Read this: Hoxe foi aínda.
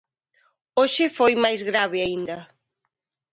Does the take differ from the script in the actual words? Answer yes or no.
yes